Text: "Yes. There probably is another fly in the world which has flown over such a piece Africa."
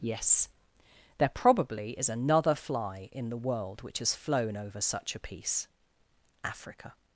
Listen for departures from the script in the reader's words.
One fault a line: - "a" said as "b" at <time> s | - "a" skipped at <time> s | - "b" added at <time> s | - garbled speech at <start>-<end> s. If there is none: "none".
none